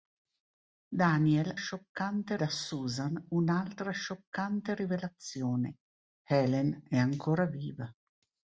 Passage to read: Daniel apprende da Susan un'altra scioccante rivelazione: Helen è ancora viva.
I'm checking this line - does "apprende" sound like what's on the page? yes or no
no